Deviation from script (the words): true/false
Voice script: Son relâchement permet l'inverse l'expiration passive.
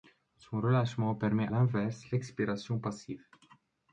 false